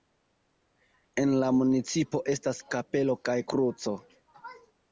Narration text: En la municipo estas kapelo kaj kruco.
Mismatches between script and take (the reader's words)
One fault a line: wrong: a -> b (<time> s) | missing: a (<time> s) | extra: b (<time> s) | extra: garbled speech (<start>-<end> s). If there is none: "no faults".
no faults